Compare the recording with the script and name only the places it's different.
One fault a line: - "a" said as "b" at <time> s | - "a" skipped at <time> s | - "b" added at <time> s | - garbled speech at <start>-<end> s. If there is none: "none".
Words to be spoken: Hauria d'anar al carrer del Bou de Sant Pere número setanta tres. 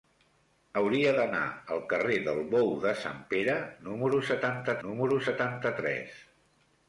- "número setanta" added at 4.9 s